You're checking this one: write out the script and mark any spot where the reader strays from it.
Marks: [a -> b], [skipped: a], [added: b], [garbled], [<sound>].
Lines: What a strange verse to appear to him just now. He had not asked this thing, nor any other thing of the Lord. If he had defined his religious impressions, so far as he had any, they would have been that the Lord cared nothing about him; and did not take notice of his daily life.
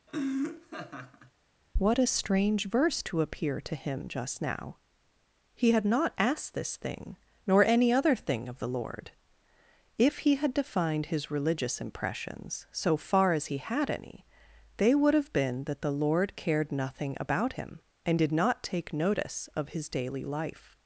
[laugh] What a strange verse to appear to him just now. He had not asked this thing, nor any other thing of the Lord. If he had defined his religious impressions, so far as he had any, they would have been that the Lord cared nothing about him; and did not take notice of his daily life.